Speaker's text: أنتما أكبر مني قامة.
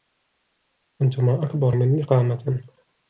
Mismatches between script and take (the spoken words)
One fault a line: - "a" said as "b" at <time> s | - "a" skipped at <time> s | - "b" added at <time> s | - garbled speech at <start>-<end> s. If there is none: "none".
none